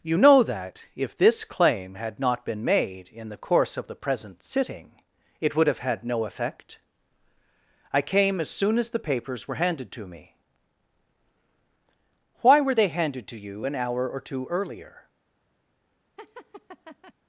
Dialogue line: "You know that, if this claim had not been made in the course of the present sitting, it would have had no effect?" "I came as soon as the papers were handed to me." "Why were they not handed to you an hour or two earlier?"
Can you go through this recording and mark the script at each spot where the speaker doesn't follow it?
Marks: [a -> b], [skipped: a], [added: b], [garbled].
"You know that, if this claim had not been made in the course of the present sitting, it would have had no effect?" "I came as soon as the papers were handed to me." "Why were they [skipped: not] handed to you an hour or two earlier?"